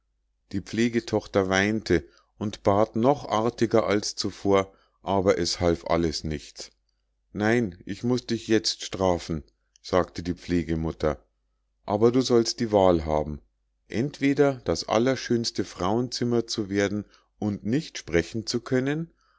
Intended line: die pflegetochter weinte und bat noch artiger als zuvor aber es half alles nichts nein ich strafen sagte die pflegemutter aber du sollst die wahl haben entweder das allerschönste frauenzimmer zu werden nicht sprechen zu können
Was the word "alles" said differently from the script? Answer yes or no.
no